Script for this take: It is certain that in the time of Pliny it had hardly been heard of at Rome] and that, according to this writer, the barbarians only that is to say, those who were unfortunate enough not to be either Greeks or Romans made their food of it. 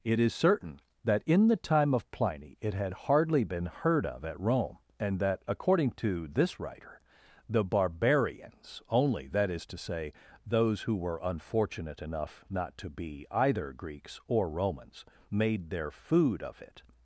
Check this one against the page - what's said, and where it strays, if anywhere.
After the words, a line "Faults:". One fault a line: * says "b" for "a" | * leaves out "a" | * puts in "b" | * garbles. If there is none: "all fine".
It is certain that in the time of Pliny it had hardly been heard of at Rome] and that, according to this writer, the barbarians only that is to say, those who were unfortunate enough not to be either Greeks or Romans made their food of it.
Faults:
all fine